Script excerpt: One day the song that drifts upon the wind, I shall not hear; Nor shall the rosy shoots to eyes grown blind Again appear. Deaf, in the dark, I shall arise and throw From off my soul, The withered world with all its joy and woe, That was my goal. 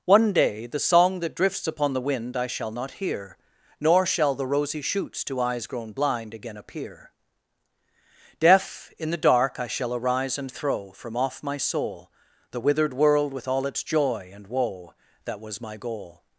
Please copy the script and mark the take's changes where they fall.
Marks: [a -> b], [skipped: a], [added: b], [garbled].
One day the song that drifts upon the wind, I shall not hear; Nor shall the rosy shoots to eyes grown blind Again appear. Deaf, in the dark, I shall arise and throw From off my soul, The withered world with all its joy and woe, That was my goal.